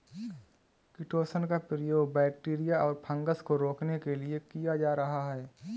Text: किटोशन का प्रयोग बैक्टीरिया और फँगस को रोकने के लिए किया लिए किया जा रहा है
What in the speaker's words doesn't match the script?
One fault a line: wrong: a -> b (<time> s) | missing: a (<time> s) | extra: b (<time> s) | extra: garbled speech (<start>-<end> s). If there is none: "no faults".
missing: लिए किया (4.8 s)